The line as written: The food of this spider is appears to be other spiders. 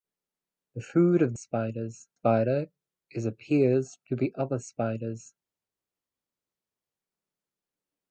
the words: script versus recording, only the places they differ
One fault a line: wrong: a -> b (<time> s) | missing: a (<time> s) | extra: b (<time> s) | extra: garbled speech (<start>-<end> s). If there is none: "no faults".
wrong: this -> spiders (1.3 s)